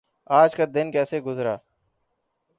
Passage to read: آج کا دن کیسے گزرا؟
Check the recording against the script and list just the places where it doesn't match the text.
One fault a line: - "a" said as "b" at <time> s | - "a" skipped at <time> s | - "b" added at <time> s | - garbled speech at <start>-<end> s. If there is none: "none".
none